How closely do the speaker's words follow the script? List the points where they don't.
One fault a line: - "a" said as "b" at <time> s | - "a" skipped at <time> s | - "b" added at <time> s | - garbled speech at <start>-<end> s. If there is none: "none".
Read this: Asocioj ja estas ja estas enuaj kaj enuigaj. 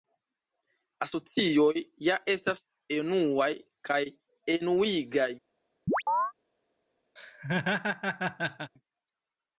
- "ja estas" skipped at 2.6 s